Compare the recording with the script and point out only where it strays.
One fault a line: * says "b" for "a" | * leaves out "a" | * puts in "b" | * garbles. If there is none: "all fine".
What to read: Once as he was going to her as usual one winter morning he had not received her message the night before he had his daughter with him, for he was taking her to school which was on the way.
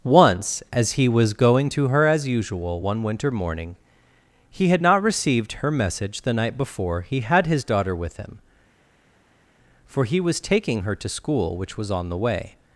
all fine